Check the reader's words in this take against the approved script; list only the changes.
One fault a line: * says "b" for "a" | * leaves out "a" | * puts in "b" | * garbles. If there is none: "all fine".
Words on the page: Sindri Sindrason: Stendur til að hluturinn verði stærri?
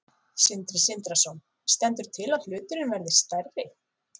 all fine